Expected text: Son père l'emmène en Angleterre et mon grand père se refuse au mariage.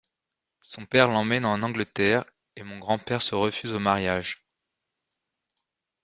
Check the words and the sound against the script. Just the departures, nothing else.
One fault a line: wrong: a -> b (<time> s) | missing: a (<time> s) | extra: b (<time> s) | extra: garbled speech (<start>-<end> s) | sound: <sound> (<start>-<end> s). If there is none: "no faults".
no faults